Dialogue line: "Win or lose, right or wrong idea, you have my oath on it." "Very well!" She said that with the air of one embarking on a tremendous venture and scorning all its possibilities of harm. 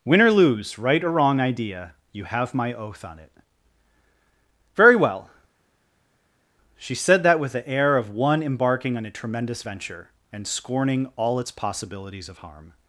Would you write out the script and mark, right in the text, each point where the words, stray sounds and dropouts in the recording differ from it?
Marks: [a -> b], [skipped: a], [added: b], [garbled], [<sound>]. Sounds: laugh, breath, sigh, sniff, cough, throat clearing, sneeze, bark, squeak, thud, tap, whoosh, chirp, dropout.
"Win or lose, right or wrong idea, you have my oath on it." "Very well!" She said that with the air of one embarking on a tremendous venture and scorning all its possibilities of harm.